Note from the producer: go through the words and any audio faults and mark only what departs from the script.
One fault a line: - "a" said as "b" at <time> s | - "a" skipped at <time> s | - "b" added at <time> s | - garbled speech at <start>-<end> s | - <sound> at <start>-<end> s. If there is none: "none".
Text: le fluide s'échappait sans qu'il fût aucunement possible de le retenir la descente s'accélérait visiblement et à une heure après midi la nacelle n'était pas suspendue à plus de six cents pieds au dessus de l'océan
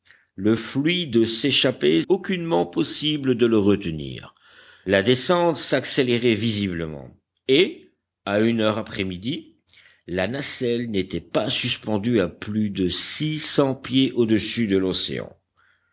- "sans qu'il fût" skipped at 2.0 s